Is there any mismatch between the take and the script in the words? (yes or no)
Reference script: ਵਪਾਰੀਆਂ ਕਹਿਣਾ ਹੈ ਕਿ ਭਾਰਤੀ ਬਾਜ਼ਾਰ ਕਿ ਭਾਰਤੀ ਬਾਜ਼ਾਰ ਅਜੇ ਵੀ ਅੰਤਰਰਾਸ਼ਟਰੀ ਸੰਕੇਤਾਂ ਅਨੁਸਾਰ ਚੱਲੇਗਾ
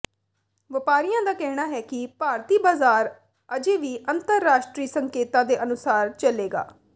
yes